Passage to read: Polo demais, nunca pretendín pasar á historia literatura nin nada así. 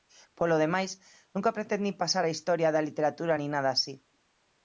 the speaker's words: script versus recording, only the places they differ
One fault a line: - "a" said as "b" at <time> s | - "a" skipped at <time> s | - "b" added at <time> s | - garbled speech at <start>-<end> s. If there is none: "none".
- "da" added at 2.7 s